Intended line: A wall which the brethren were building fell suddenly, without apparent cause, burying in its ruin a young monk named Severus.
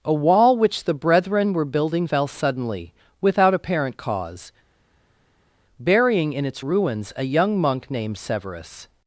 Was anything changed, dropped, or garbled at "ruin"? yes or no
yes